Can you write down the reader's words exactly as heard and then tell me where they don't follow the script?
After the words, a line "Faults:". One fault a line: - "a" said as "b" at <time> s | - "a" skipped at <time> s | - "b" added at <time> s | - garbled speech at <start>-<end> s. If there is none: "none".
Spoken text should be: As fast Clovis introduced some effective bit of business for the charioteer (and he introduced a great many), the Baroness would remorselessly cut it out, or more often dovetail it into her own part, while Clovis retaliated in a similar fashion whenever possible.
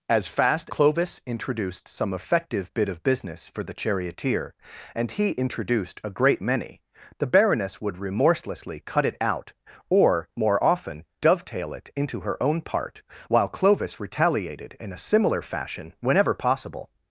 As fast Clovis introduced some effective bit of business for the charioteer (and he introduced a great many), the Baroness would remorselessly cut it out, or more often dovetail it into her own part, while Clovis retaliated in a similar fashion whenever possible.
Faults:
none